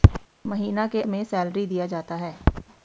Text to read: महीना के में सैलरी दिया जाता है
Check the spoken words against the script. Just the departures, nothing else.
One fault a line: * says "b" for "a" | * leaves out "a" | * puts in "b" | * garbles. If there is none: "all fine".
all fine